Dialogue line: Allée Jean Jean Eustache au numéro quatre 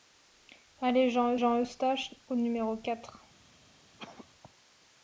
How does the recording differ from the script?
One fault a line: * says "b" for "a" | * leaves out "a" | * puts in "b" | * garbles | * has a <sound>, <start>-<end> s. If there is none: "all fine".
* has a cough, 4.0-4.3 s